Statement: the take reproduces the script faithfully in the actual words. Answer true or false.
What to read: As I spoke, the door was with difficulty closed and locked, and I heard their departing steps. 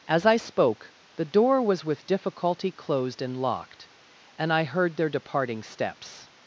true